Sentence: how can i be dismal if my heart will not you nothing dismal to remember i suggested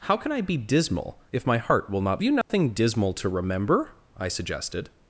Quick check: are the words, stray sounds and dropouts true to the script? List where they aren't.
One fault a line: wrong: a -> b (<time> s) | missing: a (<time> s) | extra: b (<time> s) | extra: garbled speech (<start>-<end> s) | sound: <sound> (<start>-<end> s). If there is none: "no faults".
sound: dropout (2.4-2.5 s)